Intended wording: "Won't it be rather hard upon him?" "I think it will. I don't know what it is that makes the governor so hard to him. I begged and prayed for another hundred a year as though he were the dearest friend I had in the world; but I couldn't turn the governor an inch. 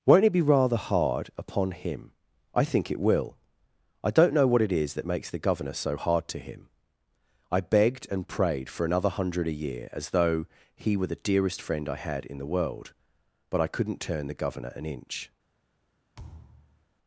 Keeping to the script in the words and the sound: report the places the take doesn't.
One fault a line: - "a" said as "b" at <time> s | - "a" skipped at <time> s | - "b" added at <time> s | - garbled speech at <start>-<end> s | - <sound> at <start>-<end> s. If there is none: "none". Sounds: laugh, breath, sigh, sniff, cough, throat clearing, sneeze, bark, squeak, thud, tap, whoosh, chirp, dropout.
- thud at 16.2-16.9 s